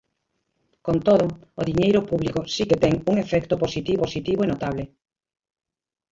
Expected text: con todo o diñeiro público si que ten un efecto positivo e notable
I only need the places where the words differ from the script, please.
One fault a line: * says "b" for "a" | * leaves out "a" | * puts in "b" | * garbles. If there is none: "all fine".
* puts in "positivo"